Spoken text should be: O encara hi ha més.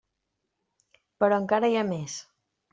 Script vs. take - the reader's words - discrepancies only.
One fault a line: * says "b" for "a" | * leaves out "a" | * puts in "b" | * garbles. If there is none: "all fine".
* says "Però" for "O"